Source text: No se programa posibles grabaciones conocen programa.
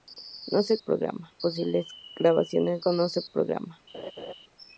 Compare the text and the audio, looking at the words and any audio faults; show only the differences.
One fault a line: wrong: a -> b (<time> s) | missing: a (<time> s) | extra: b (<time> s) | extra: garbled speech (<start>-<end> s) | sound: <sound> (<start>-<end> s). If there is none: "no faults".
sound: laugh (3.9-4.3 s)